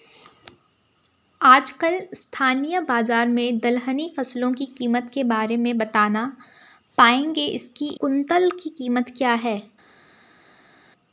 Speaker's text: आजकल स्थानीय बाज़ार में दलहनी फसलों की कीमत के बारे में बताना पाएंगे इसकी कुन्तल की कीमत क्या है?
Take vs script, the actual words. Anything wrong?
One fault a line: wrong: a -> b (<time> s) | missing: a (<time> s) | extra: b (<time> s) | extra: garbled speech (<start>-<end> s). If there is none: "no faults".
no faults